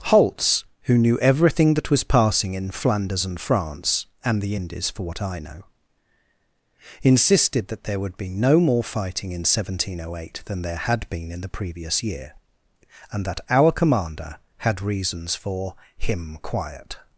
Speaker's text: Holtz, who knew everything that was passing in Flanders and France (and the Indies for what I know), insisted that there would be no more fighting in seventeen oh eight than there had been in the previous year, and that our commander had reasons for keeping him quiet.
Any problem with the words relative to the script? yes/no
yes